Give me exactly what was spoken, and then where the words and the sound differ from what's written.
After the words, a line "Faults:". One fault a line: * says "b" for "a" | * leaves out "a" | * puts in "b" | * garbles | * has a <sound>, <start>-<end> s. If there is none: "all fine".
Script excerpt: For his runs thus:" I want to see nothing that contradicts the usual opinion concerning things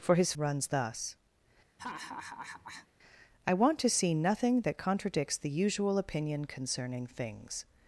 For his runs thus:" I want to see nothing that contradicts the usual opinion concerning things
Faults:
* has a laugh, 1.8-2.9 s